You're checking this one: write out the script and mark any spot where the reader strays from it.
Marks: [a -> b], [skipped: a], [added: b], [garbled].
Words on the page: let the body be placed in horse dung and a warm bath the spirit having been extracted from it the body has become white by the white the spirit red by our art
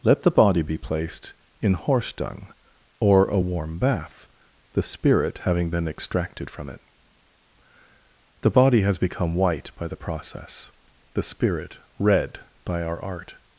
let the body be placed in horse dung [and -> or] a warm bath the spirit having been extracted from it the body has become white by the [white -> process] the spirit red by our art